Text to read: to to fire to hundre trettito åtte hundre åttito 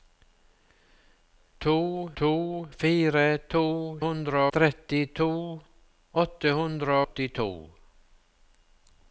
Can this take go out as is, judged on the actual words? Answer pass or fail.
pass